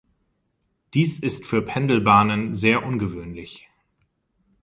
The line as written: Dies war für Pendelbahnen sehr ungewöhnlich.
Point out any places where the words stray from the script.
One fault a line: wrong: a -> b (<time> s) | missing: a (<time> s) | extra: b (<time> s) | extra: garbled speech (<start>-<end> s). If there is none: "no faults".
wrong: war -> ist (1.2 s)